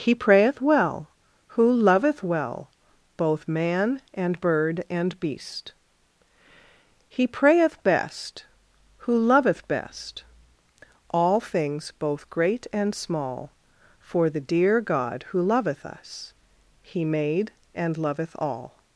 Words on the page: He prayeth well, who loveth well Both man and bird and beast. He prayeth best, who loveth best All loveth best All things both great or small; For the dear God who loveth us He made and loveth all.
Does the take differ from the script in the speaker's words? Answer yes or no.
yes